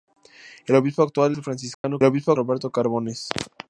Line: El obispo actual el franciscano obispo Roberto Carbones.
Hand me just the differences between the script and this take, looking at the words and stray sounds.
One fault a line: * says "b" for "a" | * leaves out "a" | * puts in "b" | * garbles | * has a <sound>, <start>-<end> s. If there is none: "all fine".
* has a dropout, 1.7-1.8 s